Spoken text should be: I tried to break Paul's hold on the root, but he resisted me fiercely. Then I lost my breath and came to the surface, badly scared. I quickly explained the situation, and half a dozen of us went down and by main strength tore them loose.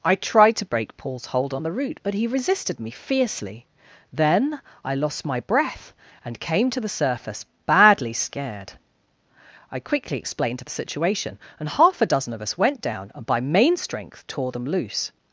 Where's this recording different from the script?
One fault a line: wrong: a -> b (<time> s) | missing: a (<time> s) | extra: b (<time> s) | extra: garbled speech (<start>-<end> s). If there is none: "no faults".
no faults